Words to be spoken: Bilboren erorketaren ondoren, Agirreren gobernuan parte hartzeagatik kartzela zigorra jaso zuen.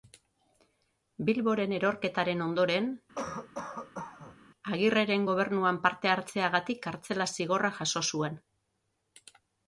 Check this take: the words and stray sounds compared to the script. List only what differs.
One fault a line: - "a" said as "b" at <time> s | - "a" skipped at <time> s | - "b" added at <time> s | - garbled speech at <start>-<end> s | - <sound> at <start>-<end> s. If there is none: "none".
- cough at 3.2-4.4 s